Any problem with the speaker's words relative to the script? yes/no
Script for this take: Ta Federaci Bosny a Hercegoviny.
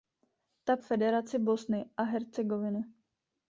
no